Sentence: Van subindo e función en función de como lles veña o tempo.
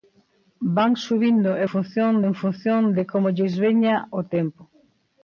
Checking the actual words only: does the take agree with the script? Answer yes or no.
yes